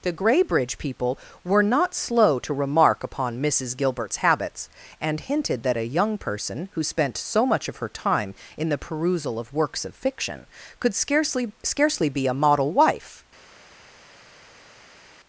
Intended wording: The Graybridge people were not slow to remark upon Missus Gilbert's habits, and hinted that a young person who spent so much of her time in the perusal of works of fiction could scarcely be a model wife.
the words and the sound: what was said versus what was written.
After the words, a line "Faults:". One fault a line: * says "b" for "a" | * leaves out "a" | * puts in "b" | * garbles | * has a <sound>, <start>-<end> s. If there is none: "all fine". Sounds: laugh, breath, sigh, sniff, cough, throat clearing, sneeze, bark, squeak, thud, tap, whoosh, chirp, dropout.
The Graybridge people were not slow to remark upon Missus Gilbert's habits, and hinted that a young person who spent so much of her time in the perusal of works of fiction could scarcely scarcely be a model wife.
Faults:
* puts in "scarcely"